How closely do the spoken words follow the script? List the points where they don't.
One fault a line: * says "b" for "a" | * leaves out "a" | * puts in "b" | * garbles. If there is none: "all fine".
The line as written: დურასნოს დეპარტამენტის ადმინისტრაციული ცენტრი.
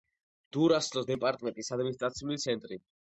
all fine